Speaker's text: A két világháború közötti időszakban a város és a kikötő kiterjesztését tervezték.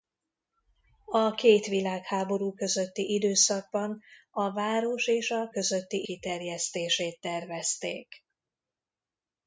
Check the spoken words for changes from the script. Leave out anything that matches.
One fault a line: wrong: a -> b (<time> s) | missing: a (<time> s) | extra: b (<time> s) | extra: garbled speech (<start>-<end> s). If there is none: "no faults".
wrong: kikötő -> közötti (5.5 s)